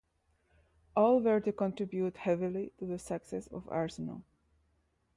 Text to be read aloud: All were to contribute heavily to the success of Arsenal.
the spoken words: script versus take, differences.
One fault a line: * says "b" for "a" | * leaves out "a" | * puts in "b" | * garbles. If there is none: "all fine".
all fine